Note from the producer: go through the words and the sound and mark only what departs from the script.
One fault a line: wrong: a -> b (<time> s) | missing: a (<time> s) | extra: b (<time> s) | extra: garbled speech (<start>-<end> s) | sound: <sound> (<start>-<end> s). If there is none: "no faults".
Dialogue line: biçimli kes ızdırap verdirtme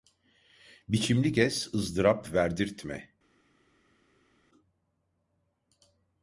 no faults